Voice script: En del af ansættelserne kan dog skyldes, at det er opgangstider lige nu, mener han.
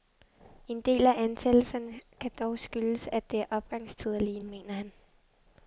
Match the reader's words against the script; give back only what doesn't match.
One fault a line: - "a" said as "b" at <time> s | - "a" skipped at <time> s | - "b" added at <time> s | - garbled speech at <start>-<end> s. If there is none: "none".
- "nu" skipped at 4.4 s